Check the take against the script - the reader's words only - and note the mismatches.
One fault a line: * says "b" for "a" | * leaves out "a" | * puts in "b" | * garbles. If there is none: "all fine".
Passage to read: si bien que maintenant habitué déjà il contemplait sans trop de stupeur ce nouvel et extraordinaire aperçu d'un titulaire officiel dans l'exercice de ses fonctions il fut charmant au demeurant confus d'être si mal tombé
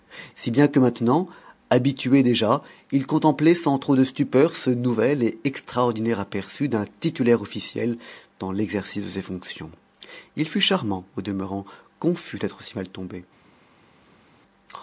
all fine